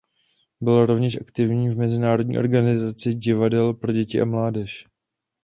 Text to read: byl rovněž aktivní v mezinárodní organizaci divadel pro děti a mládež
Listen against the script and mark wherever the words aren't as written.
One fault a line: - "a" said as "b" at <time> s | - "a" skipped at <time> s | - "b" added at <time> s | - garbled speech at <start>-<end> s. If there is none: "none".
none